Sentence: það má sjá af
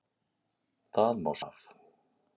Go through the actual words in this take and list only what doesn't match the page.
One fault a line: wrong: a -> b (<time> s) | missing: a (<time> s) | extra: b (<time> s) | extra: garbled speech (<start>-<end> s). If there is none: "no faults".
missing: sjá (1.4 s)